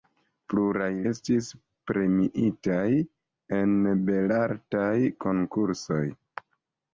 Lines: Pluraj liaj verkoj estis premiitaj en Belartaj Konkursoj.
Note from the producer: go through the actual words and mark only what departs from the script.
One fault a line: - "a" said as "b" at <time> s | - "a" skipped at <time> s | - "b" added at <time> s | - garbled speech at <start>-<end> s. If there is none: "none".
- "liaj verkoj" skipped at 0.9 s